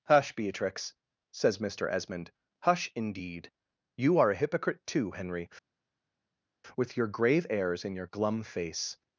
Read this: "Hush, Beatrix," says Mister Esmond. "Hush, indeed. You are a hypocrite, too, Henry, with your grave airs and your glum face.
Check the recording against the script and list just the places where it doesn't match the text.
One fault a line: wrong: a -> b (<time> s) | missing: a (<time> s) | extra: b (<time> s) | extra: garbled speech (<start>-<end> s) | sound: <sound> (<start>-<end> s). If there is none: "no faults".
no faults